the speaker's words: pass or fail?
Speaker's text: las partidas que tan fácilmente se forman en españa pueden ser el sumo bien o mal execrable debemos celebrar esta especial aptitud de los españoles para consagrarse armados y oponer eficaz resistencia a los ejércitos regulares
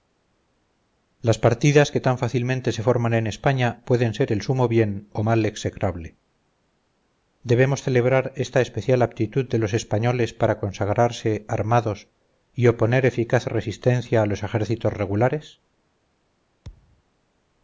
pass